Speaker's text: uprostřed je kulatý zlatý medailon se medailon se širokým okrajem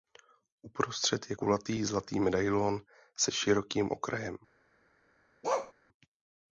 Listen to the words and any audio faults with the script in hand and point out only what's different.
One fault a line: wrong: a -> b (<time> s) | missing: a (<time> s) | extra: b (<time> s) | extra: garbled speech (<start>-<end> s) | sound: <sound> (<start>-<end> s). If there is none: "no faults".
missing: medailon se (3.3 s)
sound: bark (5.4-5.7 s)